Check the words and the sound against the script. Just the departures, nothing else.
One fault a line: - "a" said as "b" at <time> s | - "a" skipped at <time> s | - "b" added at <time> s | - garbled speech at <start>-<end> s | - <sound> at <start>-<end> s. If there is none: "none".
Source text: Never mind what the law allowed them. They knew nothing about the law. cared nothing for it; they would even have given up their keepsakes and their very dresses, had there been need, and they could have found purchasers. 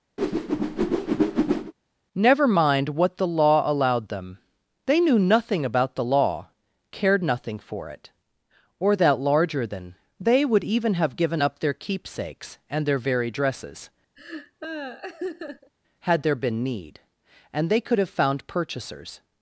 - whoosh at 0.2-1.7 s
- "or that larger than" added at 8.8 s
- laugh at 14.2-15.7 s